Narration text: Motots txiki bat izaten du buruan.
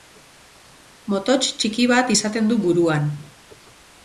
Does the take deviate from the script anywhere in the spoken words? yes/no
no